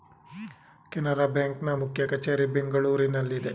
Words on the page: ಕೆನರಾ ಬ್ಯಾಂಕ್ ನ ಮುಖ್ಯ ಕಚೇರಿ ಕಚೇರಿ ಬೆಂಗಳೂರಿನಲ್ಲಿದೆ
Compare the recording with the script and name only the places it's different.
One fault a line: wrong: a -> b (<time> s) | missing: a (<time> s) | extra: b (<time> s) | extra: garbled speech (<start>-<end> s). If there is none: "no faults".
missing: ಕಚೇರಿ (2.5 s)